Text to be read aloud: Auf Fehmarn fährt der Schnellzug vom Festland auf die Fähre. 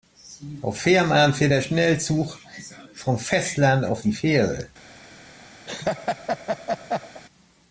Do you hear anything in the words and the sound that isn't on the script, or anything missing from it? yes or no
yes